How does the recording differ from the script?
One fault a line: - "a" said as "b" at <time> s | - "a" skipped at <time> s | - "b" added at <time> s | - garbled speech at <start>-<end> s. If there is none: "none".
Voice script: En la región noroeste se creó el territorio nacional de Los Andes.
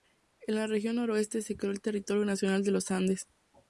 none